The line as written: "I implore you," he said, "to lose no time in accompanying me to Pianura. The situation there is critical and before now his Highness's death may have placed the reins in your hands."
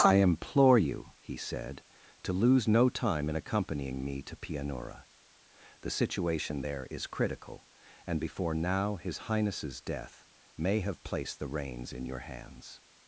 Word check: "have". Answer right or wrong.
right